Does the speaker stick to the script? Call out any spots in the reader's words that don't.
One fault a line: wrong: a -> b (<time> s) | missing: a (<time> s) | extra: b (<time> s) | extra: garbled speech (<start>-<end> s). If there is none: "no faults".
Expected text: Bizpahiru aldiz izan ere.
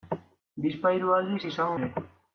no faults